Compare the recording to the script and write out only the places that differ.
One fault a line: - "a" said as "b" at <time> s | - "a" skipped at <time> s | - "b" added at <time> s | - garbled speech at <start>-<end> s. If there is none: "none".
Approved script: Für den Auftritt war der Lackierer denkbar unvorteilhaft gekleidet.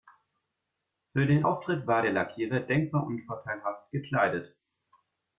none